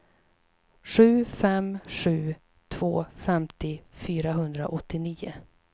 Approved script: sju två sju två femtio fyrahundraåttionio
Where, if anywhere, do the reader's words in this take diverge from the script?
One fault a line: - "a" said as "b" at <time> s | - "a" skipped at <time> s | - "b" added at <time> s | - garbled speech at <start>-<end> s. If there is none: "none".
- "två" said as "fem" at 1.2 s